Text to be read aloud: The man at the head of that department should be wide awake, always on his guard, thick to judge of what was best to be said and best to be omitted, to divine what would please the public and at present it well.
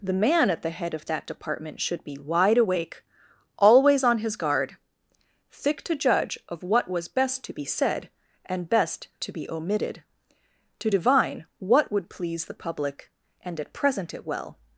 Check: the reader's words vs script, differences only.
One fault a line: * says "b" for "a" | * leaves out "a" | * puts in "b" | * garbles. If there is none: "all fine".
all fine